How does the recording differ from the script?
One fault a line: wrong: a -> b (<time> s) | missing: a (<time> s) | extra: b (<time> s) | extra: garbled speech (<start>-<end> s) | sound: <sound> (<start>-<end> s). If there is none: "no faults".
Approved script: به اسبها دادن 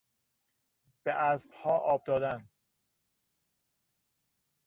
extra: آب (1.7 s)